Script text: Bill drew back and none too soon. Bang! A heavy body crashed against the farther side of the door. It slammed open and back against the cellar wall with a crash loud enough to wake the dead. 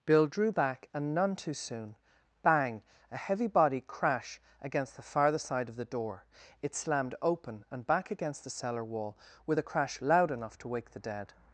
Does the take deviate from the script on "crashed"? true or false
true